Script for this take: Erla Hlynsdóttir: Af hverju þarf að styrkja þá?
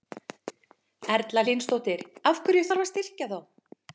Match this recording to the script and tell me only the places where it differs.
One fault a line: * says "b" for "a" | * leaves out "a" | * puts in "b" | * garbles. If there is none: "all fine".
all fine